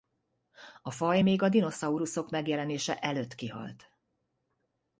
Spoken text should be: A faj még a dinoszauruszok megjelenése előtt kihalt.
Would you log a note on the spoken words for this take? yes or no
no